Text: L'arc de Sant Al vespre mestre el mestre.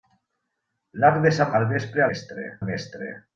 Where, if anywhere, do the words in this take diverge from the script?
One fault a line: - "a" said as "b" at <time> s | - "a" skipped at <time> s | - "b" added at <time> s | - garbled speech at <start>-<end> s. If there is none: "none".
none